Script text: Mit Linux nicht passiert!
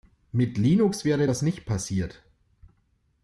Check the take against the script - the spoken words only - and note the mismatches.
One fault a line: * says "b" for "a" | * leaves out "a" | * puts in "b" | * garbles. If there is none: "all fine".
* puts in "wäre das"